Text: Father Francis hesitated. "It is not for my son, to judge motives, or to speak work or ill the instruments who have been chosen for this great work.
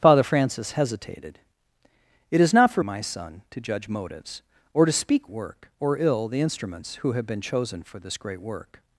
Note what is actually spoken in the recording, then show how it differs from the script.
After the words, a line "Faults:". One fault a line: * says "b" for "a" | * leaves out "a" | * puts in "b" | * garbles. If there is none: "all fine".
Father Francis hesitated. "It is not for my son, to judge motives, or to speak work or ill the instruments who have been chosen for this great work.
Faults:
all fine